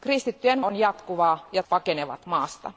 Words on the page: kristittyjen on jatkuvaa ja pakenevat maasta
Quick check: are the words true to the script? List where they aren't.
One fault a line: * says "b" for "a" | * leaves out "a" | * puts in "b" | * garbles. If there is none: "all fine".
all fine